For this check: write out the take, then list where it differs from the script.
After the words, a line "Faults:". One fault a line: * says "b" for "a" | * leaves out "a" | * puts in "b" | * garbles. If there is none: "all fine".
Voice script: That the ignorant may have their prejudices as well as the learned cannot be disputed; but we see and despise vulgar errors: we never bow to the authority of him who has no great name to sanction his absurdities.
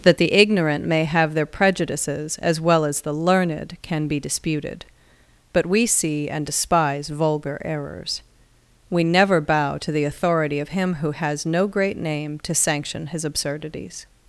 That the ignorant may have their prejudices as well as the learned can be disputed; but we see and despise vulgar errors: we never bow to the authority of him who has no great name to sanction his absurdities.
Faults:
* says "can" for "cannot"